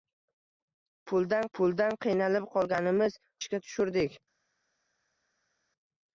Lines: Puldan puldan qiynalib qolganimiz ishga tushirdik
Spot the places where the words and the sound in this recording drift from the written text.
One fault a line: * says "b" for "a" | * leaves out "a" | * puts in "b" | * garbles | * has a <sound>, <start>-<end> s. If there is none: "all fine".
all fine